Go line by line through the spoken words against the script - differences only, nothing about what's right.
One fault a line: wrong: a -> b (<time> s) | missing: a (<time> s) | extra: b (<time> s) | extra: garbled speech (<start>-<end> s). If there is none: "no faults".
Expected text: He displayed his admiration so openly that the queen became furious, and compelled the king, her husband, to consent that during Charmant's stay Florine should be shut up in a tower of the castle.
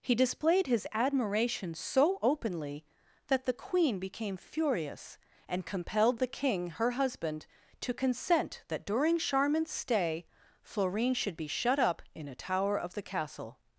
no faults